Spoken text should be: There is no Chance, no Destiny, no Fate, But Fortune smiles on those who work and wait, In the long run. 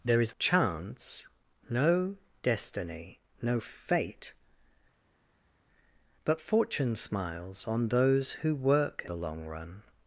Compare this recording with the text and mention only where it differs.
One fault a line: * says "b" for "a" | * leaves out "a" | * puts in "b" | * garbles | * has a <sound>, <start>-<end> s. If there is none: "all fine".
* leaves out "no"
* leaves out "and wait In"